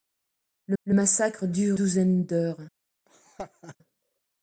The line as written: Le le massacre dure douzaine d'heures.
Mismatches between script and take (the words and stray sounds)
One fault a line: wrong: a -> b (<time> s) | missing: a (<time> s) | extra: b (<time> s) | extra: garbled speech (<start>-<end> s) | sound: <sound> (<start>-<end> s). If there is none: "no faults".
sound: laugh (3.1-3.8 s)